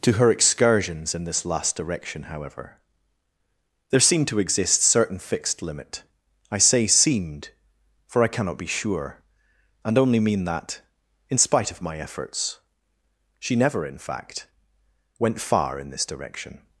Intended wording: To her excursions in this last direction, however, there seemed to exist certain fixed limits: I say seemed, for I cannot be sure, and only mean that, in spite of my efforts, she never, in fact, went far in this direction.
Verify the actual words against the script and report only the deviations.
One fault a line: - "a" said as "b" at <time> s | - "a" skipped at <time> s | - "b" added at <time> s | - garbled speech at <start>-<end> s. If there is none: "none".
- "limits" said as "limit" at 5.6 s